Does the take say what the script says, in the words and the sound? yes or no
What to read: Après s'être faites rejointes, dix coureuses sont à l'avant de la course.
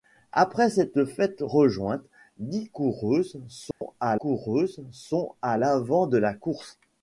no